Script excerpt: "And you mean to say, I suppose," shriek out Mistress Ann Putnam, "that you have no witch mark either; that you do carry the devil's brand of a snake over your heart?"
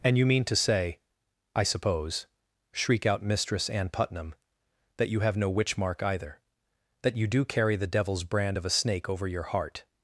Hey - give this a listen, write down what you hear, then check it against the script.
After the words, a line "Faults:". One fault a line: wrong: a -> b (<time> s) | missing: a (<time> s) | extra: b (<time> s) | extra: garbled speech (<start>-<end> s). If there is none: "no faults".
"And you mean to say, I suppose," shriek out Mistress Ann Putnam, "that you have no witch mark either; that you do carry the devil's brand of a snake over your heart?"
Faults:
no faults